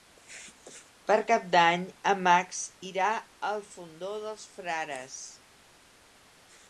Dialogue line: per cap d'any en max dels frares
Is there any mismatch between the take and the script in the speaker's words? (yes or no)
yes